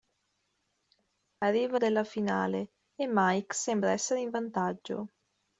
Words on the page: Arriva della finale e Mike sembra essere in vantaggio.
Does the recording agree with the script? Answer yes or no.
yes